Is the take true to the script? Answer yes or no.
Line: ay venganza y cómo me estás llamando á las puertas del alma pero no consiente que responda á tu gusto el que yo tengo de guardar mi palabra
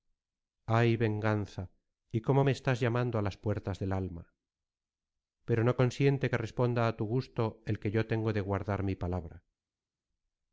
yes